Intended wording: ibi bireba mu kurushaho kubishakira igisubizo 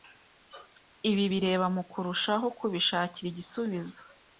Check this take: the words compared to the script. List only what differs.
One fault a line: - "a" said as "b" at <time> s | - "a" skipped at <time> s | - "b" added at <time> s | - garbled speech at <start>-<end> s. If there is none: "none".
none